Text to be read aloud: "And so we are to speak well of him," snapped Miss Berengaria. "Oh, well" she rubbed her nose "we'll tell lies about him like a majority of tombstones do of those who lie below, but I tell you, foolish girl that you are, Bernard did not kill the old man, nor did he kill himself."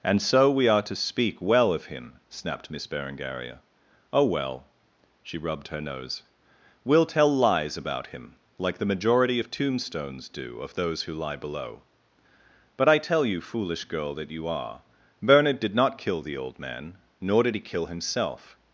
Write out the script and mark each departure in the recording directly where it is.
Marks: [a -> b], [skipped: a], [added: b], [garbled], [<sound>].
"And so we are to speak well of him," snapped Miss Berengaria. "Oh, well" she rubbed her nose "we'll tell lies about him like [a -> the] majority of tombstones do of those who lie below, but I tell you, foolish girl that you are, Bernard did not kill the old man, nor did he kill himself."